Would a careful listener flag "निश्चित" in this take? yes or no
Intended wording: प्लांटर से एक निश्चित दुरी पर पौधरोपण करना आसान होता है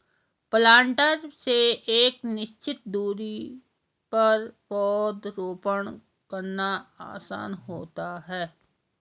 no